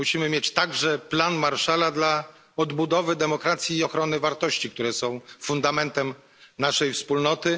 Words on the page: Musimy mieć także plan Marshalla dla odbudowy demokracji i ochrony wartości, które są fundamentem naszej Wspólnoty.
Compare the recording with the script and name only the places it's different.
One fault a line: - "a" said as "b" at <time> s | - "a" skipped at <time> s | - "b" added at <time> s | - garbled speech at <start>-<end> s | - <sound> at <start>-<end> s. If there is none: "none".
none